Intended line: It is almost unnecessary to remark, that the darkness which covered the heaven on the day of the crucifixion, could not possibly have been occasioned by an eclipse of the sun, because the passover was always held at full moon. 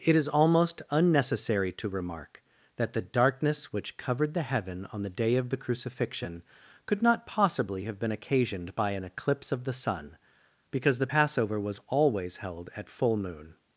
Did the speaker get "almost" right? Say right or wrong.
right